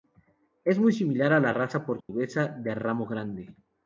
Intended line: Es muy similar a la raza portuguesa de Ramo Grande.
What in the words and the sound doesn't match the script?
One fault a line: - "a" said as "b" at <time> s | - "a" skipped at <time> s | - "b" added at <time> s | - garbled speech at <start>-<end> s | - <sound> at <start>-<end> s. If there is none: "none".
- dropout at 2.0-2.1 s